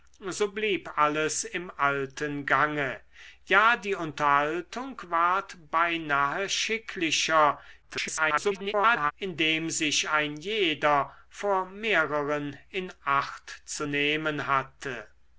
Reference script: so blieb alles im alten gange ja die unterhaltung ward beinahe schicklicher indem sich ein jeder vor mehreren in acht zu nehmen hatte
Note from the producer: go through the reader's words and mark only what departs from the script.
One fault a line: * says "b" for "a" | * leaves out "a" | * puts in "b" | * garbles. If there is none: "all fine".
* garbles